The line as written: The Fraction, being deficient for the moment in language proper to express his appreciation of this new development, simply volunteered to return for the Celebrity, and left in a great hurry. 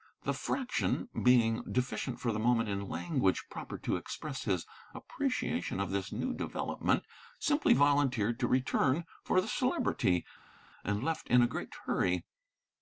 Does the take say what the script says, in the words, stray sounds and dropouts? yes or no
yes